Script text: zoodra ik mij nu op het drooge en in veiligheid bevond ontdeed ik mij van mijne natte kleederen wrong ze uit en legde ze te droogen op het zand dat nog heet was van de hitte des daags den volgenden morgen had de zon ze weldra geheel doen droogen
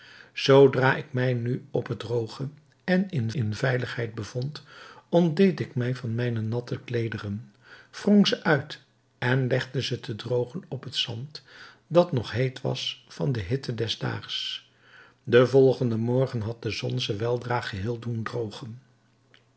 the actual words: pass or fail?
fail